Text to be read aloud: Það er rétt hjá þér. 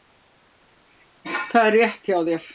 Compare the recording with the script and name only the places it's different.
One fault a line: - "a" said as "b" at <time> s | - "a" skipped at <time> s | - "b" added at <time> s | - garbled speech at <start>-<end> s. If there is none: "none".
none